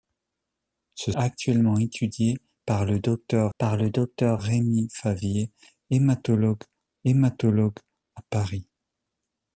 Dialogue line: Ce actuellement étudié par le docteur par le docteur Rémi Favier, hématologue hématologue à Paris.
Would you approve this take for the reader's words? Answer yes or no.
yes